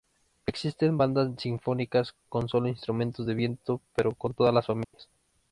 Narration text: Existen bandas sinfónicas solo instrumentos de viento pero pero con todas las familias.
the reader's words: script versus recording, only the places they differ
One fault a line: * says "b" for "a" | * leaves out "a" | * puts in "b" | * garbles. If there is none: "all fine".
* puts in "con"
* leaves out "pero"